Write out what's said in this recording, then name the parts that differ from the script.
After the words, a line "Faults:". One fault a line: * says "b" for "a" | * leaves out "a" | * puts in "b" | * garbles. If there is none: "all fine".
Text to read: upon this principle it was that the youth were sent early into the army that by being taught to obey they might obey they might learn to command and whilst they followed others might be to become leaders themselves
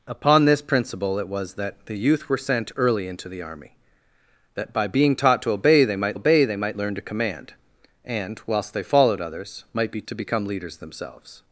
upon this principle it was that the youth were sent early into the army that by being taught to obey they might obey they might learn to command and whilst they followed others might be to become leaders themselves
Faults:
all fine